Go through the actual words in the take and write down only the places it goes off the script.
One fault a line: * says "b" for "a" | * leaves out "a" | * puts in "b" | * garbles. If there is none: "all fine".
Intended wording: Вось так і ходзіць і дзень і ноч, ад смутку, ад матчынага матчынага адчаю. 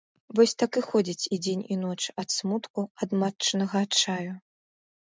* leaves out "матчынага"